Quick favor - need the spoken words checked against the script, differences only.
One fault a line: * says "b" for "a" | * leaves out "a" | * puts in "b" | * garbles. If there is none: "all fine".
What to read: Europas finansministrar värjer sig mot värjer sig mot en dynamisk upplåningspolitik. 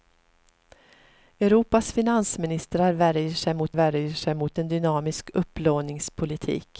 all fine